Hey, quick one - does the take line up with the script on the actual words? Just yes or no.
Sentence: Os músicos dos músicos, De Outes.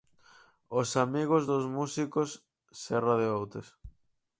no